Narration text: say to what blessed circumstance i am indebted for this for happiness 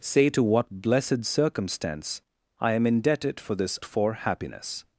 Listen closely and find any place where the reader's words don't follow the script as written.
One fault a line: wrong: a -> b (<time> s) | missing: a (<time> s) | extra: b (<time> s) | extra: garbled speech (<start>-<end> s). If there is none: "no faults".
no faults